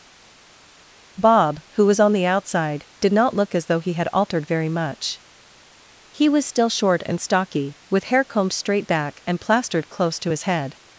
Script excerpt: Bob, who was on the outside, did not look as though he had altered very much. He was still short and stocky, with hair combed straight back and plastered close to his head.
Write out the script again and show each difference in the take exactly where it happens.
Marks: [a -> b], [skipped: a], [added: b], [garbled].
Bob, who was on the outside, did not look as though he had altered very much. He was still short and stocky, with hair combed straight back and plastered close to his head.